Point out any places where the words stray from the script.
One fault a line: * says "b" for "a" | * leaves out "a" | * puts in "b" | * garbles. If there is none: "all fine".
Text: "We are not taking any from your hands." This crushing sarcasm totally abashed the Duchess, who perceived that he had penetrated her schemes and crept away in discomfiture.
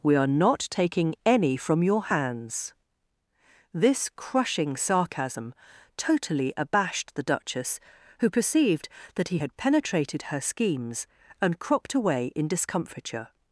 * says "cropped" for "crept"